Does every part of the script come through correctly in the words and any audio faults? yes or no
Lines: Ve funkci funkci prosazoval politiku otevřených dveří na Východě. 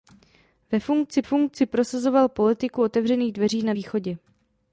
yes